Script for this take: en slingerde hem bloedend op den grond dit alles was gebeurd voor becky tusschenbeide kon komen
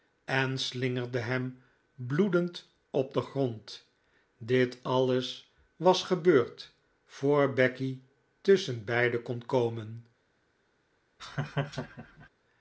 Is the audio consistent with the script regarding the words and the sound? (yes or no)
no